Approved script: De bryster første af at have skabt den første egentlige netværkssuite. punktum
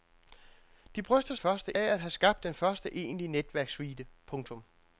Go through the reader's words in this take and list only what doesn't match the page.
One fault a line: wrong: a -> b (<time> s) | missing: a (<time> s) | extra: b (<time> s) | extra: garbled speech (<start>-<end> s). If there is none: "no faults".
no faults